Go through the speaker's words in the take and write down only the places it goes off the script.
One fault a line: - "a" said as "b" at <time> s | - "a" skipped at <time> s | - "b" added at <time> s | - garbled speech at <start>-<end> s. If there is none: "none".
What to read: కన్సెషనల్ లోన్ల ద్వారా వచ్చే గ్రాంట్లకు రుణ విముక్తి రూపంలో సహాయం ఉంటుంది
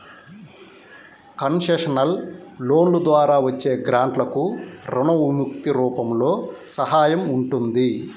none